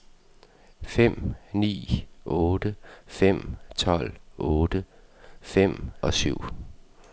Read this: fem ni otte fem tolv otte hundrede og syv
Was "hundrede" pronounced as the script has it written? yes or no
no